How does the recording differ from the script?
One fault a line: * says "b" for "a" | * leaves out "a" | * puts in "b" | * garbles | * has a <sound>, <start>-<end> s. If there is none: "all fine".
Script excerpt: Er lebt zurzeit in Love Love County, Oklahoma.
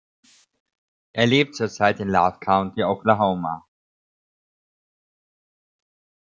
* leaves out "Love"